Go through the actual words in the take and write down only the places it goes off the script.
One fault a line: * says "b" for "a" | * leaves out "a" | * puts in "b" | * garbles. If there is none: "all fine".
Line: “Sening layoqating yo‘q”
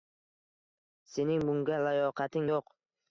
* puts in "bunga"